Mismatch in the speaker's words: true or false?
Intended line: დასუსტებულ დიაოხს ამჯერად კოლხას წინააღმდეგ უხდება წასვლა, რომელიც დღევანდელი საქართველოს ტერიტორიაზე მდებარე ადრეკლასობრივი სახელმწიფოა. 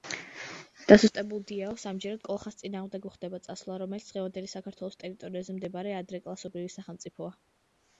false